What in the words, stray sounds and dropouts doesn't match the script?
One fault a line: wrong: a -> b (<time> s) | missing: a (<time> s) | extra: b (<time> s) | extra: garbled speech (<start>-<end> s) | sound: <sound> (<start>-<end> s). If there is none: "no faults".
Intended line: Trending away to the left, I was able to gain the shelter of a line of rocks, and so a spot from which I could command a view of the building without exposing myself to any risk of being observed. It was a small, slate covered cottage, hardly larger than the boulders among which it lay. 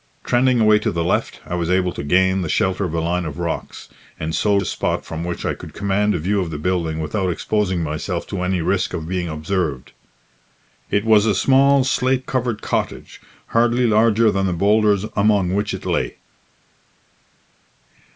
no faults